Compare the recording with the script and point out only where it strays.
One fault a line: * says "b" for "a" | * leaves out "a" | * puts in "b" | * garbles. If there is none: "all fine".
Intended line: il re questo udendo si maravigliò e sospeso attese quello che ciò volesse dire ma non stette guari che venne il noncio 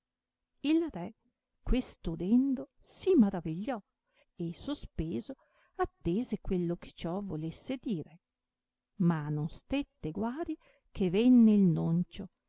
all fine